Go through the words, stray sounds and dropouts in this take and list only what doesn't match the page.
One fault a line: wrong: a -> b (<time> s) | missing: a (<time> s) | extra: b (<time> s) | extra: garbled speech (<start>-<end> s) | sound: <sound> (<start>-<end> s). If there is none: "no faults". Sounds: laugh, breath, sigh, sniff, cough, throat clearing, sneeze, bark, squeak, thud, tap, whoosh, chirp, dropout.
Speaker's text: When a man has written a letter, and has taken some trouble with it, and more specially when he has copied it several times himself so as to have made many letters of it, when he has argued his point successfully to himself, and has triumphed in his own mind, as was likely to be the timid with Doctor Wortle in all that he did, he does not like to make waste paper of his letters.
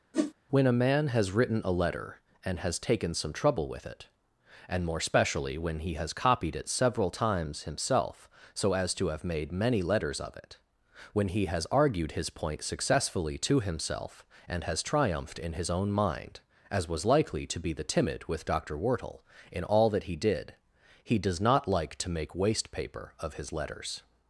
sound: whoosh (0.1-0.3 s)